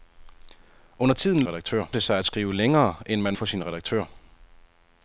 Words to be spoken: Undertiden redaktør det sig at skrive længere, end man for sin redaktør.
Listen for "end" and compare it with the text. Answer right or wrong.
right